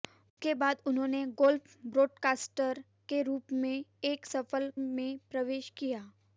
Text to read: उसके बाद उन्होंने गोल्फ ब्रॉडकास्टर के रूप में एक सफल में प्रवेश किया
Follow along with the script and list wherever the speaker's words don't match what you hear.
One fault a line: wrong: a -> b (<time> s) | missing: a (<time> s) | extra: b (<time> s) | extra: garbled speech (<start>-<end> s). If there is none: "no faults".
no faults